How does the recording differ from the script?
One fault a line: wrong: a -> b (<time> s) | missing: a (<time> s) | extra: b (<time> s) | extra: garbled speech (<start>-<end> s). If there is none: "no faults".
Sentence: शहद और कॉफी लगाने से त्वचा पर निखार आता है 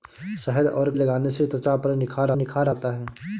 missing: कॉफी (0.9 s)
extra: निखार (2.3 s)